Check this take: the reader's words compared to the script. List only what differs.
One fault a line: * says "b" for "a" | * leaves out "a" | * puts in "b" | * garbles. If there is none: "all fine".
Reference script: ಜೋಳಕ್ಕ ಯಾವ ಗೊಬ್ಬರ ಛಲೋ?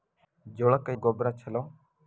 * leaves out "ಯಾವ"